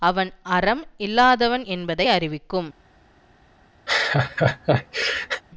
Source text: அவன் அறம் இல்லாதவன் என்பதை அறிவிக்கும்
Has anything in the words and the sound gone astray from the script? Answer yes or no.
yes